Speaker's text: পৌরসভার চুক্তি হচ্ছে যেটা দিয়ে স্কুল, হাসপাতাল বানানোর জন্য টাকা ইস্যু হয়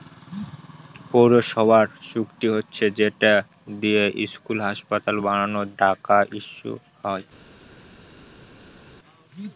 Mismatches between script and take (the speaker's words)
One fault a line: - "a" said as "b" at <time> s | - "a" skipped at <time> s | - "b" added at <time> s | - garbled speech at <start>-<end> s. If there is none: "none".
- "জন্য" skipped at 5.7 s